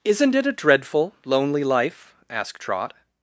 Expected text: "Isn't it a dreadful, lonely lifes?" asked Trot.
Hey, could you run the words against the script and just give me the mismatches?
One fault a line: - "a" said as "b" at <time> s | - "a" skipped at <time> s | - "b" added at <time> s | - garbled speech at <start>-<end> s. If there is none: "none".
- "lifes" said as "life" at 1.6 s